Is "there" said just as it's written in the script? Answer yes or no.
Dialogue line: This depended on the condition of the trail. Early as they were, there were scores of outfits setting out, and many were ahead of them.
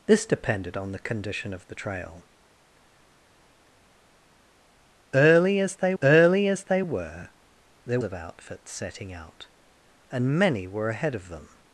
no